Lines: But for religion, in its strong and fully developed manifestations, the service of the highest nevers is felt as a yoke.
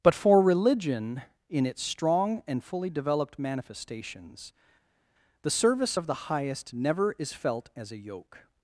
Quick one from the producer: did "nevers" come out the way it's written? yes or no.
no